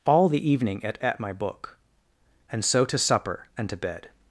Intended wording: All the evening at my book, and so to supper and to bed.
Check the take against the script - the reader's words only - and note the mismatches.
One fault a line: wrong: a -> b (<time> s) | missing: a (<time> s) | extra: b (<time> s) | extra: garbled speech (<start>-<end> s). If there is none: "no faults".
extra: at (1.0 s)